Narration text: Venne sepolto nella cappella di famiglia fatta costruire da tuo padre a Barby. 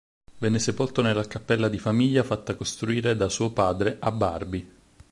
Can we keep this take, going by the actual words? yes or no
no